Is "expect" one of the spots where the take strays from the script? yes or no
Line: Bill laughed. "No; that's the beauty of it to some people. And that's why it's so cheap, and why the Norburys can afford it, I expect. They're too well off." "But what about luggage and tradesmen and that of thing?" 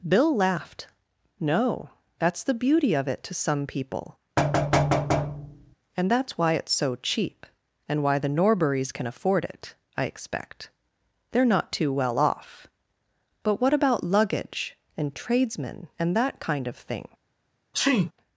no